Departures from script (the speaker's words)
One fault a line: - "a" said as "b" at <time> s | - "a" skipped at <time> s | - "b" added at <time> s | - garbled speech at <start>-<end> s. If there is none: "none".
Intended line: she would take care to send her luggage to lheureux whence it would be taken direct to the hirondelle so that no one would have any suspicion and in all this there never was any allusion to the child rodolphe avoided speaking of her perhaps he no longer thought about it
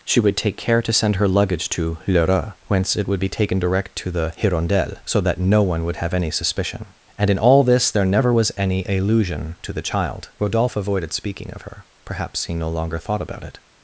none